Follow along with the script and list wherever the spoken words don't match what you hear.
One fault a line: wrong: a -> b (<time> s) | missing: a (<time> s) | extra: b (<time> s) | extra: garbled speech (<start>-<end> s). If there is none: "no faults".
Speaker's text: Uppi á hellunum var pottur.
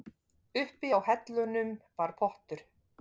no faults